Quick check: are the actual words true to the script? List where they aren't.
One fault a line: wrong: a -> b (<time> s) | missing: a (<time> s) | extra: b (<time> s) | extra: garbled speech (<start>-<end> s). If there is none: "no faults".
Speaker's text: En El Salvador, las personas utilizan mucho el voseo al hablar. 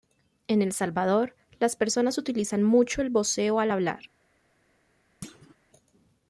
no faults